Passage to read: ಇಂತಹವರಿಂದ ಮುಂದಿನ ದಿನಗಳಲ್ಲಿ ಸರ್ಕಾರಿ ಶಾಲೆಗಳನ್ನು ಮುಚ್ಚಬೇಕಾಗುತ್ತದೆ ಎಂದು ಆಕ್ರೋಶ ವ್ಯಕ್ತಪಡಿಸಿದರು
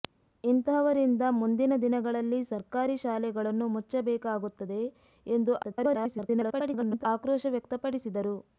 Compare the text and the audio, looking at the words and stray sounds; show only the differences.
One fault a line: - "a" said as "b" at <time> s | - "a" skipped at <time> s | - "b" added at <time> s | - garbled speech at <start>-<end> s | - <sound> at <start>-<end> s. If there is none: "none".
- garbled speech at 5.6-7.1 s